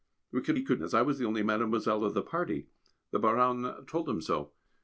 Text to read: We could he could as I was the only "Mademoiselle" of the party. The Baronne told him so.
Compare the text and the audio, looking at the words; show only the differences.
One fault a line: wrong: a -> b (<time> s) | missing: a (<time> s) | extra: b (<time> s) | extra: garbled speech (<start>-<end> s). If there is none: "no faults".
no faults